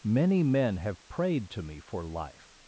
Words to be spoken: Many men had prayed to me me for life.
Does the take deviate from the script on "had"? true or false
true